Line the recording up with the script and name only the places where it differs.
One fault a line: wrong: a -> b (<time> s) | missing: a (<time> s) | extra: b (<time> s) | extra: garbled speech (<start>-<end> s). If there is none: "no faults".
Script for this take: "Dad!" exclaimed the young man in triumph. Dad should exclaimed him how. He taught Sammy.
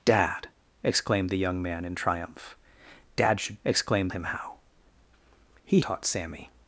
no faults